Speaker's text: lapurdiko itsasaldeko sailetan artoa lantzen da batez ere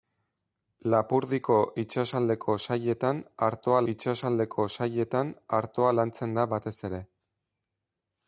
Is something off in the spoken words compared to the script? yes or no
yes